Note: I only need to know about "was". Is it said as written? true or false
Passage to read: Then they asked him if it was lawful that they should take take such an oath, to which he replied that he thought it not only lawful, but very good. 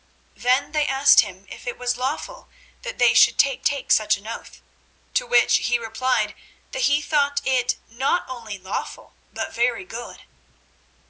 true